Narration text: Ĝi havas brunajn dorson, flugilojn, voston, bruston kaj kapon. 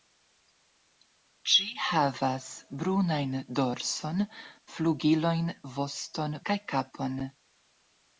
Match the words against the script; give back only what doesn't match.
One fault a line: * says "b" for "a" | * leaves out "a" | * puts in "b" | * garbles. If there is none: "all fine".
* leaves out "bruston"